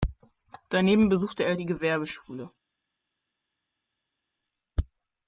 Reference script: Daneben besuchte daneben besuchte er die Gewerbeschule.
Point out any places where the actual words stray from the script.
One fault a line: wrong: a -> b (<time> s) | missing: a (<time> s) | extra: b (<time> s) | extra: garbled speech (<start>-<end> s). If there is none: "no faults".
missing: daneben besuchte (1.4 s)